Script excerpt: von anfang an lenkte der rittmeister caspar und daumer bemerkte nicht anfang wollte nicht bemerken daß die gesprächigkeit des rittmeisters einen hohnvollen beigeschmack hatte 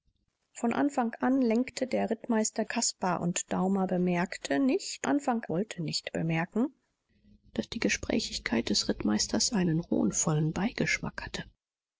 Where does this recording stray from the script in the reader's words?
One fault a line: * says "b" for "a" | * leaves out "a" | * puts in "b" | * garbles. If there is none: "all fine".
all fine